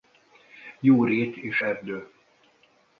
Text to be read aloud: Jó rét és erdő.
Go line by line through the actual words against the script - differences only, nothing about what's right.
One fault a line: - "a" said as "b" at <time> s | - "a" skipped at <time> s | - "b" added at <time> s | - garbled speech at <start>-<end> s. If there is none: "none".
none